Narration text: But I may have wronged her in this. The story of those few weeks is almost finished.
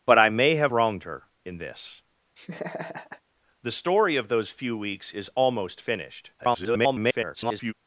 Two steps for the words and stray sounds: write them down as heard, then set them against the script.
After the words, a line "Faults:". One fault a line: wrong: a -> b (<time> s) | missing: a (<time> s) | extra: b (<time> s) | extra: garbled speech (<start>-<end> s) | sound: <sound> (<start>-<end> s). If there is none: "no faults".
But I may have wronged her in this. The story of those few weeks is almost finished. [garbled]
Faults:
sound: laugh (2.4-3.2 s)
extra: garbled speech (6.4-7.7 s)